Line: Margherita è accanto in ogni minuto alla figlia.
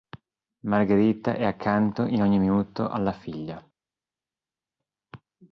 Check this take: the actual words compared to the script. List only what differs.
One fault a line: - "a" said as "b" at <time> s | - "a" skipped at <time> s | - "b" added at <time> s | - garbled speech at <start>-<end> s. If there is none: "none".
none